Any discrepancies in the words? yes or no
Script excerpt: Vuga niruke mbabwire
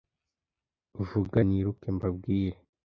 no